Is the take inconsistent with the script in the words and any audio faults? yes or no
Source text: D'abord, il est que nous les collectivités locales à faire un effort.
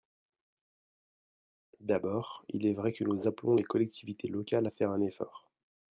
yes